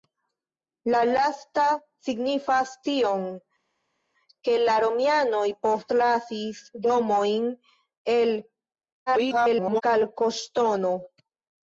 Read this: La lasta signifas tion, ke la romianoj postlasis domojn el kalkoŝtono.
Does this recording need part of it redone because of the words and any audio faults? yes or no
yes